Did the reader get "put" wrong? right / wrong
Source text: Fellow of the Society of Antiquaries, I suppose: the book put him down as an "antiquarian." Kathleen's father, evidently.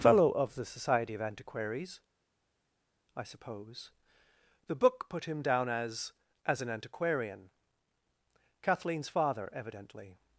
right